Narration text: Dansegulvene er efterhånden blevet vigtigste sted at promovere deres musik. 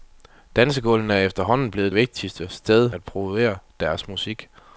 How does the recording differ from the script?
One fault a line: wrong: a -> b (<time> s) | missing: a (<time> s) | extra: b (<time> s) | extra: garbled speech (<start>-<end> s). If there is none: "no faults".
no faults